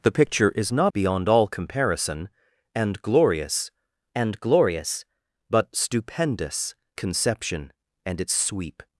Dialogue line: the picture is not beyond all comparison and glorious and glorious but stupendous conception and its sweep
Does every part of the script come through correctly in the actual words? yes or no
yes